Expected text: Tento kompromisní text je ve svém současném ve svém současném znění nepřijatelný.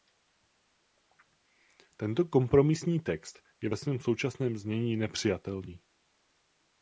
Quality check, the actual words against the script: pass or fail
fail